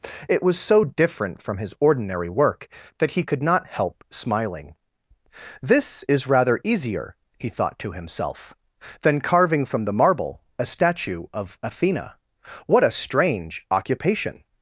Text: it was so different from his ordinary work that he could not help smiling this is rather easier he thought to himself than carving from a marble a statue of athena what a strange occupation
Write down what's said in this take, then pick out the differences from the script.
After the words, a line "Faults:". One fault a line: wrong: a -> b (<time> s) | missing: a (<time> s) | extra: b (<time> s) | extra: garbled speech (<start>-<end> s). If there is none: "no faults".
it was so different from his ordinary work that he could not help smiling this is rather easier he thought to himself than carving from the marble a statue of athena what a strange occupation
Faults:
wrong: a -> the (9.9 s)